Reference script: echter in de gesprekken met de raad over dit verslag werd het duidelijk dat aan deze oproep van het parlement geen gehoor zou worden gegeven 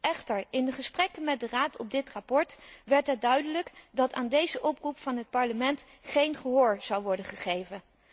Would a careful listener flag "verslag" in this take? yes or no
no